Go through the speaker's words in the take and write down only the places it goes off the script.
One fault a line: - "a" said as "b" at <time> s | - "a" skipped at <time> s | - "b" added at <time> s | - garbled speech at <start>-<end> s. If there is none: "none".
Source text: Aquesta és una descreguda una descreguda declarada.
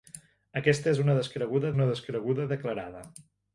none